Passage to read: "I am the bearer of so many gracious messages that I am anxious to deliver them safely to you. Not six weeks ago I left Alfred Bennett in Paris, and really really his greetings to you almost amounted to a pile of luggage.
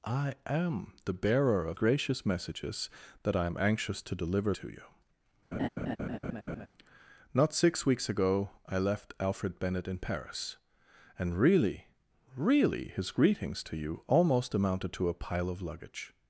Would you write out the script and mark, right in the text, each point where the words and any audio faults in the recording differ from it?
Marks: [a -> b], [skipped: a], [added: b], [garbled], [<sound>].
"I am the bearer of [skipped: so many] gracious messages that I am anxious to deliver [skipped: them safely] to you. [laugh] Not six weeks ago I left Alfred Bennett in Paris, and really really his greetings to you almost amounted to a pile of luggage.